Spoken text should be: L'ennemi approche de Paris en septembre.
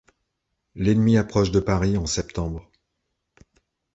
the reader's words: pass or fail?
pass